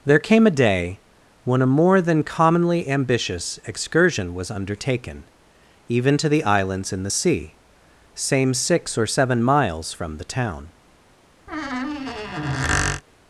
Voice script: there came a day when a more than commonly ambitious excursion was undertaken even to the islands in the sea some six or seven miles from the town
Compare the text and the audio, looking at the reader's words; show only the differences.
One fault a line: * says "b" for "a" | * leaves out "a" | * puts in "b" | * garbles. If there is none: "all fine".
* says "same" for "some"